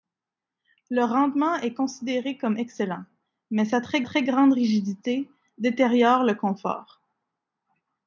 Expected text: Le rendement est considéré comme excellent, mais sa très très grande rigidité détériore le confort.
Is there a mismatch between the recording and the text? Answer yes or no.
no